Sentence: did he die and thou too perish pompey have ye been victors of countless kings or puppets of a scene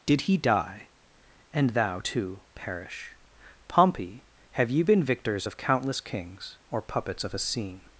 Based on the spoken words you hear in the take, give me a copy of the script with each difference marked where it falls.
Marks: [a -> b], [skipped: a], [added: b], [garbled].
did he die and thou too perish pompey have ye been victors of countless kings or puppets of a scene